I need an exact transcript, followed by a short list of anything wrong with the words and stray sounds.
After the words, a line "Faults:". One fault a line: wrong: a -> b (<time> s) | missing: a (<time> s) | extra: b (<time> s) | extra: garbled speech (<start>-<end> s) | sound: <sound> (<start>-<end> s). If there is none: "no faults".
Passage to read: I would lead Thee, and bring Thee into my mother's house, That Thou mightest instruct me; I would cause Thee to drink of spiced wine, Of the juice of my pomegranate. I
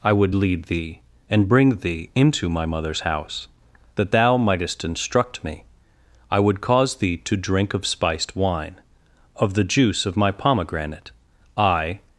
I would lead Thee, and bring Thee into my mother's house, That Thou mightest instruct me; I would cause Thee to drink of spiced wine, Of the juice of my pomegranate. I
Faults:
no faults